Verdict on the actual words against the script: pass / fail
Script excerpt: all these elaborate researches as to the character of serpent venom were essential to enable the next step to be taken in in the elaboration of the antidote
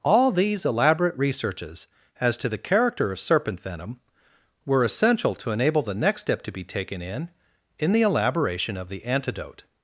pass